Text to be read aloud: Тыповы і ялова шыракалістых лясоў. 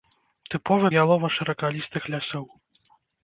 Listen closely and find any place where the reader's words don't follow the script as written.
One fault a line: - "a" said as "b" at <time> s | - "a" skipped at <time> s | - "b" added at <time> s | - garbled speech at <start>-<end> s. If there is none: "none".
none